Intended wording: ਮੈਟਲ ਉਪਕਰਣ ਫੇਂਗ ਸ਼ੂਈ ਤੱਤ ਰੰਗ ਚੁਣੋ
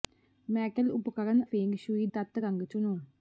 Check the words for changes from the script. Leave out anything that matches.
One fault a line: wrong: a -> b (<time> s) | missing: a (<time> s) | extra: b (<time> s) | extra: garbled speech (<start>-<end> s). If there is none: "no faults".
no faults